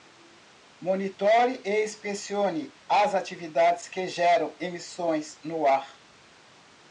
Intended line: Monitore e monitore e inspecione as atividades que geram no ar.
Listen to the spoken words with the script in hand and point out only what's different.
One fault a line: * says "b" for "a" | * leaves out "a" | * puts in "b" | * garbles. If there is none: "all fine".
* leaves out "monitore e"
* puts in "emissões"